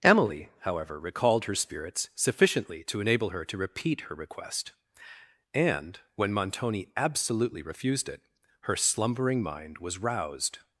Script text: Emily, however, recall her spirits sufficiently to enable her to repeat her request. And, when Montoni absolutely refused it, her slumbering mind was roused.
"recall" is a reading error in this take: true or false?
true